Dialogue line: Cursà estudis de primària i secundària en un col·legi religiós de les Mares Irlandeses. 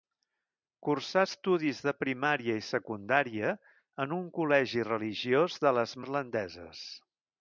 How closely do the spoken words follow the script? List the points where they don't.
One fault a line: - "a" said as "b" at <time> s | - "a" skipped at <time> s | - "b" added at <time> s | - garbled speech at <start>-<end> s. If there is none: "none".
- "Mares" skipped at 6.0 s